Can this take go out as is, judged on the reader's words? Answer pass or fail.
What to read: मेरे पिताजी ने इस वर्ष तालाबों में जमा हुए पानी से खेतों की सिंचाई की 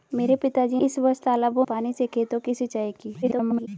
fail